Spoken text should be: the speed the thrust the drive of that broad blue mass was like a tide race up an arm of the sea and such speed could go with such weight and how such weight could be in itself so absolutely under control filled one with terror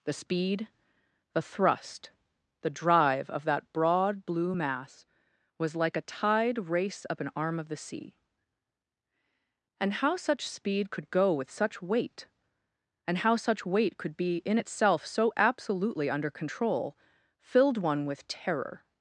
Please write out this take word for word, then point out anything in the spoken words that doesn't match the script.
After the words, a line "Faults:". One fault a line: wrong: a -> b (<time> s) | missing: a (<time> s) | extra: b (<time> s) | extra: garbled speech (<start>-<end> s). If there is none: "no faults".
the speed the thrust the drive of that broad blue mass was like a tide race up an arm of the sea and how such speed could go with such weight and how such weight could be in itself so absolutely under control filled one with terror
Faults:
extra: how (9.9 s)